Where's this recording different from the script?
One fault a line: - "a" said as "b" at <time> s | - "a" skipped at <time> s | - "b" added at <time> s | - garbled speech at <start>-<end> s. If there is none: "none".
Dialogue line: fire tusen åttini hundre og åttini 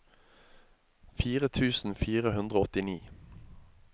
- "åttini" said as "fire" at 2.0 s